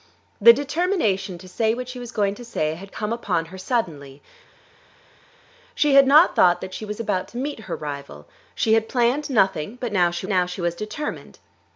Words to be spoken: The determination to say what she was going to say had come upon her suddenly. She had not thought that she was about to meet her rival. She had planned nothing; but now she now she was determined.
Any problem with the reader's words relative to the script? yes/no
no